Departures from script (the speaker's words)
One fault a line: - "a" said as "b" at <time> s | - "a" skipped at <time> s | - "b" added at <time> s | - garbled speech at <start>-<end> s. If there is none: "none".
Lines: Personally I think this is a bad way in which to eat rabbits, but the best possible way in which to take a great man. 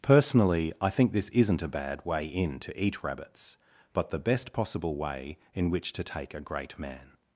- "is" said as "isn't" at 1.3 s
- "which" skipped at 2.6 s